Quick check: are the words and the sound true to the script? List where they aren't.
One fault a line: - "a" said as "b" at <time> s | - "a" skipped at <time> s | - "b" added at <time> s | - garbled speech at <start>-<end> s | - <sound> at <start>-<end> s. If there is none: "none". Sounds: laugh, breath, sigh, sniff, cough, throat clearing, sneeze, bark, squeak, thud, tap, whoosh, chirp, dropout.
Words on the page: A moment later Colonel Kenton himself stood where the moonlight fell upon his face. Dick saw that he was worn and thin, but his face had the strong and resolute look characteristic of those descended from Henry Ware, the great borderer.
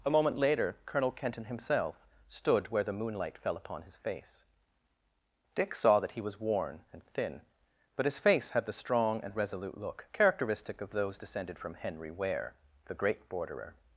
none